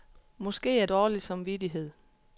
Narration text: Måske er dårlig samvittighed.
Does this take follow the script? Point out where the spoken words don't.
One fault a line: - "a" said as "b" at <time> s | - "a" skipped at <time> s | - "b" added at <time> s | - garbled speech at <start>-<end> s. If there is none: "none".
none